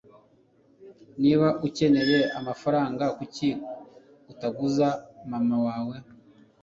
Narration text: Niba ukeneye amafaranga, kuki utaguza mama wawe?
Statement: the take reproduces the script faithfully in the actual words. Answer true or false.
true